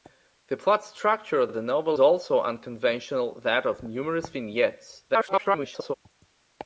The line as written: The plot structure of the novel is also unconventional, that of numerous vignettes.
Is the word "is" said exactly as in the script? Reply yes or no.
no